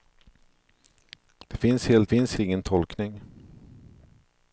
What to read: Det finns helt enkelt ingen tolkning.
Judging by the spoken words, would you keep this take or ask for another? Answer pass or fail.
fail